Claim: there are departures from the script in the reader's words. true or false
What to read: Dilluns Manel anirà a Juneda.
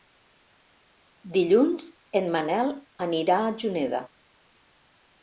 true